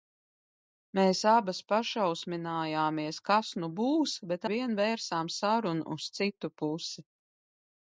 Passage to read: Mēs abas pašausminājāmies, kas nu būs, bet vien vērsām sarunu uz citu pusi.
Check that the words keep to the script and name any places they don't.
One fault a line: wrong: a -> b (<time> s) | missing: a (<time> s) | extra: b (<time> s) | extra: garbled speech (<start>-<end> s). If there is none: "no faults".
no faults